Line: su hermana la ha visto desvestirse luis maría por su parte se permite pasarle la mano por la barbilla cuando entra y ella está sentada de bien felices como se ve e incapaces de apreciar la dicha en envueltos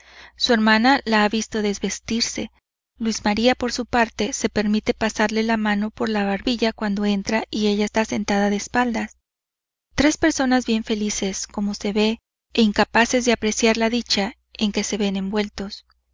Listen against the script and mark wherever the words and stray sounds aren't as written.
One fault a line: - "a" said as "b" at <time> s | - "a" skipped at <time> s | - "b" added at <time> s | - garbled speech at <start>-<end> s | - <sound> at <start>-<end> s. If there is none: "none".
- "espaldas tres personas" added at 8.6 s
- "que se ven" added at 14.7 s